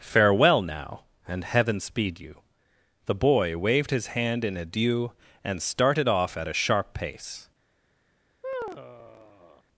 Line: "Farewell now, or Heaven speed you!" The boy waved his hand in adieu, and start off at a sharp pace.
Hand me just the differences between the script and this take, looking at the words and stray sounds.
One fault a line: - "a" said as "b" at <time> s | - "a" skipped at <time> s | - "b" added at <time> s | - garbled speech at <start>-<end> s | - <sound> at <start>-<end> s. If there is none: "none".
- "or" said as "and" at 1.3 s
- "start" said as "started" at 5.6 s
- sigh at 8.4-9.6 s